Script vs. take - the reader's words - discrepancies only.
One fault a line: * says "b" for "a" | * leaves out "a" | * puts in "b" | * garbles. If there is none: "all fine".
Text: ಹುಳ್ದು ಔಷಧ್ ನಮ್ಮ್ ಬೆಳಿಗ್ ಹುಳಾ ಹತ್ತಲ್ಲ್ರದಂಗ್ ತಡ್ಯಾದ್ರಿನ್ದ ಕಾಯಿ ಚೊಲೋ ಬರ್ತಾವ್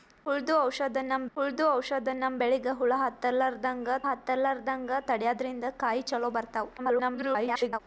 * puts in "ಹುಳ್ದು ಔಷಧ್ ನಮ್ಮ್"
* puts in "ಹತ್ತಲ್ಲ್ರದಂಗ್"
* garbles